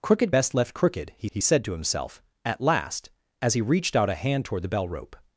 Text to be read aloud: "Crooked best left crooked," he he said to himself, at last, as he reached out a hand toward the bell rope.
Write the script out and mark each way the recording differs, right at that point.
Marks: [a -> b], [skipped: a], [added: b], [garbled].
"Crooked best left crooked," he he said to himself, at last, as he reached out a hand toward the bell rope.